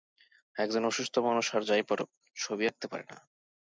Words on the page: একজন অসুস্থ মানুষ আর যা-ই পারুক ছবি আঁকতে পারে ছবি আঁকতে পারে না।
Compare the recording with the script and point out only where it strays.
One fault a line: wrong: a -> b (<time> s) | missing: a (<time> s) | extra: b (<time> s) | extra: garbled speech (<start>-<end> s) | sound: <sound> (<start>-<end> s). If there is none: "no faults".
missing: ছবি আঁকতে পারে (3.0 s)